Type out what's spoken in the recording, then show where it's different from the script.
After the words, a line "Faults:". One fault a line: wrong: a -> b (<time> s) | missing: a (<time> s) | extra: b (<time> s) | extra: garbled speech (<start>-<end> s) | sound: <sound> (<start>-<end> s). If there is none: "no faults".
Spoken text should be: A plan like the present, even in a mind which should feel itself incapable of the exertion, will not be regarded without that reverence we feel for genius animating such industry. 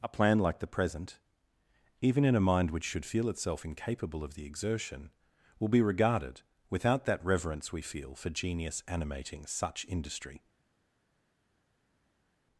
A plan like the present, even in a mind which should feel itself incapable of the exertion, will be regarded without that reverence we feel for genius animating such industry.
Faults:
missing: not (5.7 s)